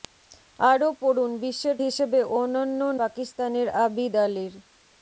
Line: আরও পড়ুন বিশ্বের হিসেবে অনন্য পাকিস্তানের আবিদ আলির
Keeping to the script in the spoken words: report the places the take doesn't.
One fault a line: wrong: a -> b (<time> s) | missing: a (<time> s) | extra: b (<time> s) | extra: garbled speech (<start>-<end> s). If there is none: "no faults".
no faults